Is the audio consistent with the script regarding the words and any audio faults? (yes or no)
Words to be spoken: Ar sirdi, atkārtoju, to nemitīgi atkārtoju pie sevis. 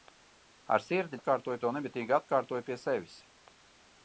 yes